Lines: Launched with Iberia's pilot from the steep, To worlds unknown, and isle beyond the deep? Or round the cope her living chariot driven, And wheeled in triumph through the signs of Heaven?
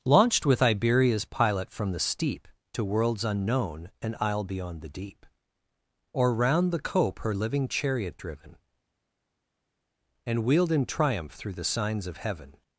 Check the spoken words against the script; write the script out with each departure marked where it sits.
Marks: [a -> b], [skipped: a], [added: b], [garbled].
Launched with Iberia's pilot from the steep, To worlds unknown, and isle beyond the deep? Or round the cope her living chariot driven, And wheeled in triumph through the signs of Heaven?